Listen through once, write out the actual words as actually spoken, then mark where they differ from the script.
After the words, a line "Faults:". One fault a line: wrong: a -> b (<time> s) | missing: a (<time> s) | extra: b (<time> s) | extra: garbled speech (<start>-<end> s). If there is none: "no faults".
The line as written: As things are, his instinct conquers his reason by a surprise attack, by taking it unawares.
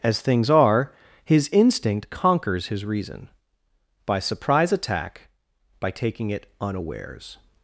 As things are, his instinct conquers his reason by surprise attack, by taking it unawares.
Faults:
missing: a (4.2 s)